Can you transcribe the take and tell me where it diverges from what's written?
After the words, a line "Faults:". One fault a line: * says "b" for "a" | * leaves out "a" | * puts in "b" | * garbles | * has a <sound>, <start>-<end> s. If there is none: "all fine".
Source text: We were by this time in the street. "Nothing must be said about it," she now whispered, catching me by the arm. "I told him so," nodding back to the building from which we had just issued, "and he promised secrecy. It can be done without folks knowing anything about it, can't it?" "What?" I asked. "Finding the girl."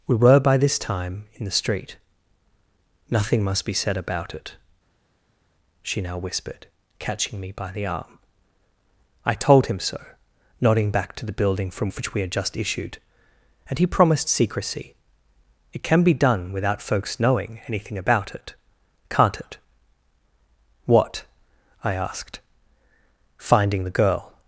We were by this time in the street. "Nothing must be said about it," she now whispered, catching me by the arm. "I told him so," nodding back to the building from which we had just issued, "and he promised secrecy. It can be done without folks knowing anything about it, can't it?" "What?" I asked. "Finding the girl."
Faults:
all fine